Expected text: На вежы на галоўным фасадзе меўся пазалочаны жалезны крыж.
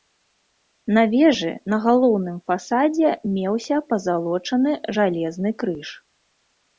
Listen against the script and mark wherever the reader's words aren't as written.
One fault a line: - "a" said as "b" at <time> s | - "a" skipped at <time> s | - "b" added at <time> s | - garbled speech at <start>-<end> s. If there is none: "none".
none